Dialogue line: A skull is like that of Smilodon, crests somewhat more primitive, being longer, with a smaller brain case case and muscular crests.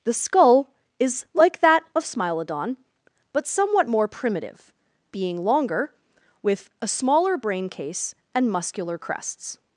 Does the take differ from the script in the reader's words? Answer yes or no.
yes